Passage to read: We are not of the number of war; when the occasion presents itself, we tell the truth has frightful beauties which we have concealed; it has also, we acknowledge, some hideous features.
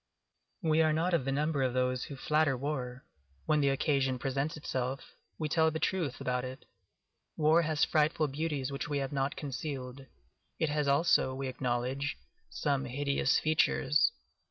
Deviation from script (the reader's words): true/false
true